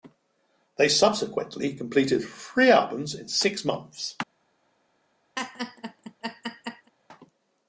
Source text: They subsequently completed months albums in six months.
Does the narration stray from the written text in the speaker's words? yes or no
yes